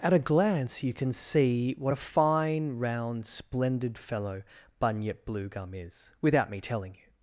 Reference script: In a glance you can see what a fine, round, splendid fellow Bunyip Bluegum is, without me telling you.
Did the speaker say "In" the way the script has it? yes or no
no